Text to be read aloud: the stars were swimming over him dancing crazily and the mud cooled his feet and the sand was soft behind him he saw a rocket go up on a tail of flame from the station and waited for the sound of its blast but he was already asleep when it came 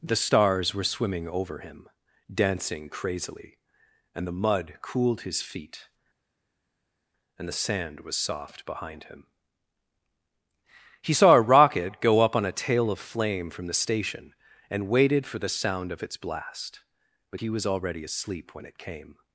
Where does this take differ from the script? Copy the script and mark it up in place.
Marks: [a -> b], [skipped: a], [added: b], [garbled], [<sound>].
the stars were swimming over him dancing crazily and the mud cooled his feet and the sand was soft behind him he saw a rocket go up on a tail of flame from the station and waited for the sound of its blast but he was already asleep when it came